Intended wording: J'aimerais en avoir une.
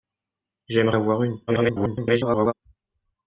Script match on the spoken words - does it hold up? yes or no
no